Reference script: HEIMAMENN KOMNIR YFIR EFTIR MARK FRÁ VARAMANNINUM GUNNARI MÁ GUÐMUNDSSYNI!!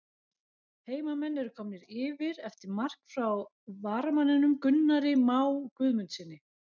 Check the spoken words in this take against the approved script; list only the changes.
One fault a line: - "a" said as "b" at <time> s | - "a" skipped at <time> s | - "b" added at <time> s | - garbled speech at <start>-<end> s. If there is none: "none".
- "ERU" added at 1.4 s